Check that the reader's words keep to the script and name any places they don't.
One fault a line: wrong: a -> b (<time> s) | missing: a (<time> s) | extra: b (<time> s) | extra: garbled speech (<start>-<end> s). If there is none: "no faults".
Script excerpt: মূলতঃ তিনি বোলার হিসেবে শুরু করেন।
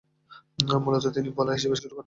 no faults